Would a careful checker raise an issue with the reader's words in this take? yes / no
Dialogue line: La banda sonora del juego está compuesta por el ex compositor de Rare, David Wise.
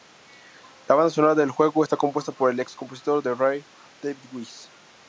no